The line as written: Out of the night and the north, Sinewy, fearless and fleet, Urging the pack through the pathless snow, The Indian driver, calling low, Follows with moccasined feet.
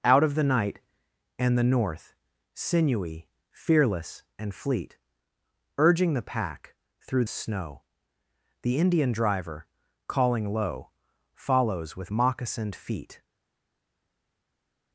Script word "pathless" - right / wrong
wrong